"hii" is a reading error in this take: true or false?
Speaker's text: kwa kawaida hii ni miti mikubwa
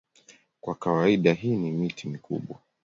false